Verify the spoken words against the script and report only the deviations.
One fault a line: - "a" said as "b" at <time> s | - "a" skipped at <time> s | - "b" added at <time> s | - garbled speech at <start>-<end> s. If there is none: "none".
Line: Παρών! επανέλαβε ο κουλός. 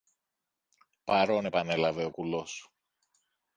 none